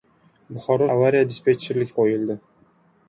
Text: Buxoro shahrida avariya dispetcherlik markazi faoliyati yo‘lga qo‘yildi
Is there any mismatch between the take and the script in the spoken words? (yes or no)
yes